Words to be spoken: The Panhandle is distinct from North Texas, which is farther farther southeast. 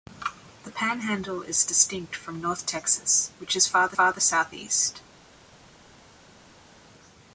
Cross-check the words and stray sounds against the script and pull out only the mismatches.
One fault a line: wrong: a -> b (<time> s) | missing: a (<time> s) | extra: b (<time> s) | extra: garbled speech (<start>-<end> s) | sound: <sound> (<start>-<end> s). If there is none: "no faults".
no faults